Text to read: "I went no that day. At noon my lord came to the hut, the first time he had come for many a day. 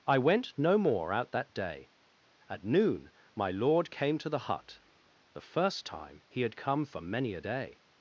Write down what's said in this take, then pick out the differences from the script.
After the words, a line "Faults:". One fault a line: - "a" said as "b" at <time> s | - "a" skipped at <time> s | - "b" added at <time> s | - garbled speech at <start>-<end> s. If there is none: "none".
"I went no more out that day. At noon my lord came to the hut, the first time he had come for many a day.
Faults:
- "more out" added at 0.8 s